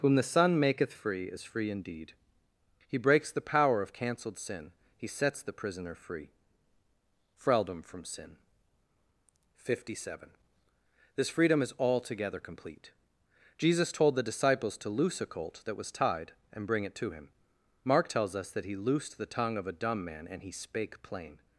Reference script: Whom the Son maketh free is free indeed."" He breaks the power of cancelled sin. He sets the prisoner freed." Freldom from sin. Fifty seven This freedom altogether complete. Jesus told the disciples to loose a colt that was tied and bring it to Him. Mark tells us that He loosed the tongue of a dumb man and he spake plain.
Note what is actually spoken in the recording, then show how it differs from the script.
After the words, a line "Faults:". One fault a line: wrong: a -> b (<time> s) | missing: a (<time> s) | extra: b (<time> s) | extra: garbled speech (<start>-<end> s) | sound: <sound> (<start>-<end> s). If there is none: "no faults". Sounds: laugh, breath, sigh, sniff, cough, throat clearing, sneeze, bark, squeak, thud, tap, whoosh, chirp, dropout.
Whom the Son maketh free is free indeed."" He breaks the power of cancelled sin. He sets the prisoner free." Freldom from sin. Fifty seven This freedom is altogether complete. Jesus told the disciples to loose a colt that was tied and bring it to Him. Mark tells us that He loosed the tongue of a dumb man and he spake plain.
Faults:
wrong: freed -> free (5.9 s)
extra: is (11.6 s)